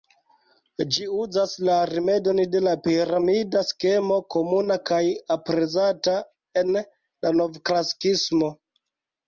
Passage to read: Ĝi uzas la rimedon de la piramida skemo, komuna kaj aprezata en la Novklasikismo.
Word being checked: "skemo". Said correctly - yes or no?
yes